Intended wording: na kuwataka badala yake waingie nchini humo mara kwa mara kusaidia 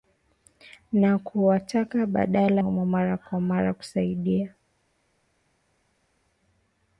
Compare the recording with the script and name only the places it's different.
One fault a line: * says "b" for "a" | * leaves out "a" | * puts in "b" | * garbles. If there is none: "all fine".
* leaves out "yake waingie nchini"